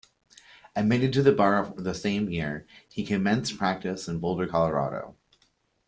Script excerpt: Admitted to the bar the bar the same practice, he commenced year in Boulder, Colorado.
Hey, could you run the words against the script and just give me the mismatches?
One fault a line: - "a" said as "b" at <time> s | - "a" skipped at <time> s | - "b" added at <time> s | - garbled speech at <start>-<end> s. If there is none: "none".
- "bar the" skipped at 1.9 s
- "practice" said as "year" at 2.3 s
- "year" said as "practice" at 3.6 s